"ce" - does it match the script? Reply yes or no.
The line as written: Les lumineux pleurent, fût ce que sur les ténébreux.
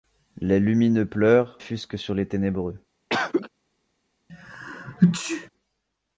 yes